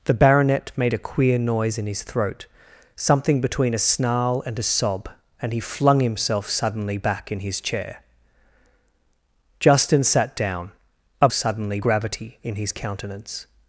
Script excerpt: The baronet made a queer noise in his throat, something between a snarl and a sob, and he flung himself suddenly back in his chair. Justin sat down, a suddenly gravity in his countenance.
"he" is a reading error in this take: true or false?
false